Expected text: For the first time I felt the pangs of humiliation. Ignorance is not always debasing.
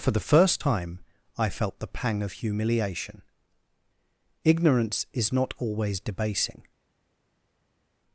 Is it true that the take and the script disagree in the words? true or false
true